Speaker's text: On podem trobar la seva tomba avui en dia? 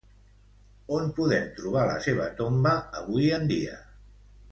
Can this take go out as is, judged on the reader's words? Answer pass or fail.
pass